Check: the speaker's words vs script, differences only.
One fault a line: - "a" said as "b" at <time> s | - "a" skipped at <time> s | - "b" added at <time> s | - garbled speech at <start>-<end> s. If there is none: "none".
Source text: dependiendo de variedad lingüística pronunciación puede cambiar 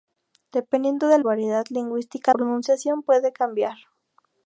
none